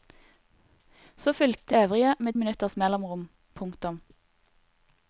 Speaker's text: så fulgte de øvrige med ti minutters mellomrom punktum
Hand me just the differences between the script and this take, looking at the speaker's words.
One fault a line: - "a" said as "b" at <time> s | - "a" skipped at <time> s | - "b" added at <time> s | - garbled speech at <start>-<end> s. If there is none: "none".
- "de" skipped at 1.8 s
- "ti" skipped at 2.3 s